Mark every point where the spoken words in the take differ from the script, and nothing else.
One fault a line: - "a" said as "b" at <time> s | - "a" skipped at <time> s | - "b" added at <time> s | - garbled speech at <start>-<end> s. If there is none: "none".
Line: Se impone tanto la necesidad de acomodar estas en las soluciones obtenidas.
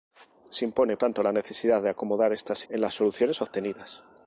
none